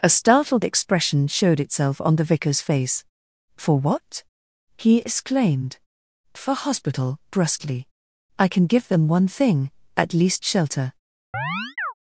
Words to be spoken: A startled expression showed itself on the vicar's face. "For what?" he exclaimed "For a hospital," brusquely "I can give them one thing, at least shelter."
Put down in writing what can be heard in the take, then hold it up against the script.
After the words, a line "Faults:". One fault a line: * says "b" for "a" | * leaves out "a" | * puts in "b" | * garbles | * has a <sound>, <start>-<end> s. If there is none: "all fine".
A startled expression showed itself on the vicar's face. "For what?" he exclaimed "For hospital," brusquely "I can give them one thing, at least shelter."
Faults:
* leaves out "a"
* has a chirp, 11.3-11.9 s